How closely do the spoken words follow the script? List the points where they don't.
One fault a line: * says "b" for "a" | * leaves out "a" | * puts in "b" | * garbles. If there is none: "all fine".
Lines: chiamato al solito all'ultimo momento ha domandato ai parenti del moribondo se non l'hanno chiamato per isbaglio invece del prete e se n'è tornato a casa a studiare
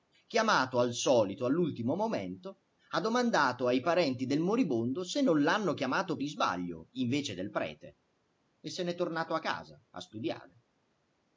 * leaves out "per"